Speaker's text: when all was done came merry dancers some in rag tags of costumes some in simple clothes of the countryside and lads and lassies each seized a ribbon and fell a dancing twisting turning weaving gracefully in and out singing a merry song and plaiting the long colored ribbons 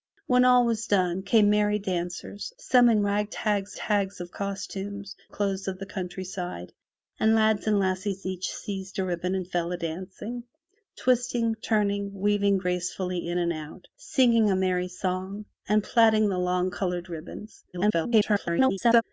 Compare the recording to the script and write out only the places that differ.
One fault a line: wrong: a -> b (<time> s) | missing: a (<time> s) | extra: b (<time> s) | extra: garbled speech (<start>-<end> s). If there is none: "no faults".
extra: tags (3.7 s)
missing: some in simple (5.1 s)
extra: garbled speech (17.7-19.0 s)